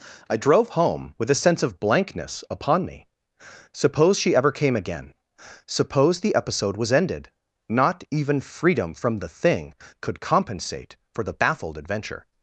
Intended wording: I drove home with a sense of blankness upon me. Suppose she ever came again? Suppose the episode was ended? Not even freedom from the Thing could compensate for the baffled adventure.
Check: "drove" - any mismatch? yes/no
no